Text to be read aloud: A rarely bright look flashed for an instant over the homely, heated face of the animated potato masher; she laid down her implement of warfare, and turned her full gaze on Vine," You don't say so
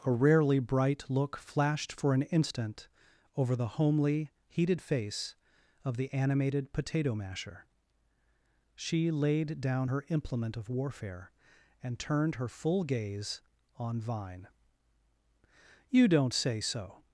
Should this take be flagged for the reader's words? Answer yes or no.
no